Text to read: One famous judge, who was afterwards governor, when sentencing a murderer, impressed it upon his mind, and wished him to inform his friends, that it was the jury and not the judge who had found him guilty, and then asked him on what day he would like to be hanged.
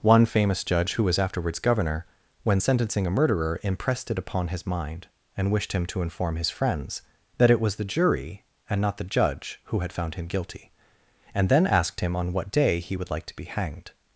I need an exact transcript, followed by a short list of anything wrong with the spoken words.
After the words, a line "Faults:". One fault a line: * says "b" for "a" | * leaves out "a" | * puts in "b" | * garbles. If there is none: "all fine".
One famous judge, who was afterwards governor, when sentencing a murderer, impressed it upon his mind, and wished him to inform his friends, that it was the jury and not the judge who had found him guilty, and then asked him on what day he would like to be hanged.
Faults:
all fine